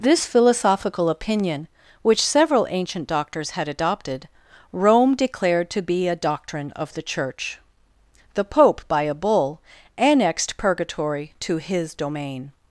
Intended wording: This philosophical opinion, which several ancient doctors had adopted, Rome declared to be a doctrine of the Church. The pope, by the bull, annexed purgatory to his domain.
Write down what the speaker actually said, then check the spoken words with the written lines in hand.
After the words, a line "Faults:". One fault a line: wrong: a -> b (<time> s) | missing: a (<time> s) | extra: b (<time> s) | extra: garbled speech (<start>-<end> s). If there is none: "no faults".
This philosophical opinion, which several ancient doctors had adopted, Rome declared to be a doctrine of the Church. The pope, by a bull, annexed purgatory to his domain.
Faults:
wrong: the -> a (9.0 s)